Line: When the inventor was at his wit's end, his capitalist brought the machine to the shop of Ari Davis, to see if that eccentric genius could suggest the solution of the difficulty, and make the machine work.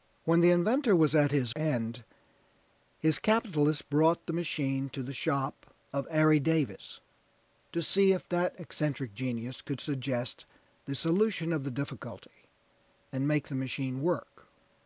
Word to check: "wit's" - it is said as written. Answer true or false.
false